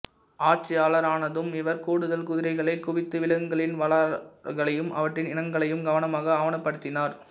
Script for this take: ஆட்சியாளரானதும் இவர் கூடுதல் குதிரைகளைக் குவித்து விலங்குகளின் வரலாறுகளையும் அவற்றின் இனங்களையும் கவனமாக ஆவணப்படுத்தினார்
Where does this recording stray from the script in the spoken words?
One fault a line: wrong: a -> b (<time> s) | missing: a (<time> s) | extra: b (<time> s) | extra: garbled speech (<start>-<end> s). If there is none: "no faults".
no faults